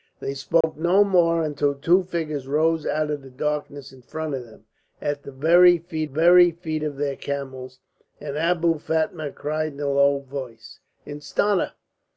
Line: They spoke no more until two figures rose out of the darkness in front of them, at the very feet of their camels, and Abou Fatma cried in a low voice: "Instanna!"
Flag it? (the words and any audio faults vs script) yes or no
yes